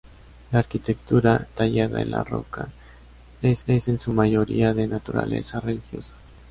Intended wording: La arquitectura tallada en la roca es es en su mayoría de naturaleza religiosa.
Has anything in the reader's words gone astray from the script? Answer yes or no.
no